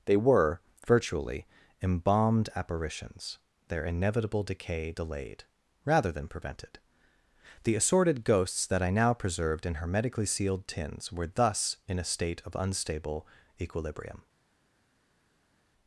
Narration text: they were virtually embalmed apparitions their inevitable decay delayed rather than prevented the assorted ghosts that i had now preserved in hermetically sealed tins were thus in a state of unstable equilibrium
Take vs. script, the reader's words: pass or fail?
fail